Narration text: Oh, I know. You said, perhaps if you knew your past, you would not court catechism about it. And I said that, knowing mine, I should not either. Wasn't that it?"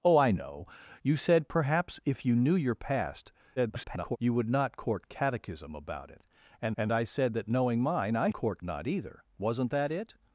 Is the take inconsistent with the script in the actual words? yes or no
yes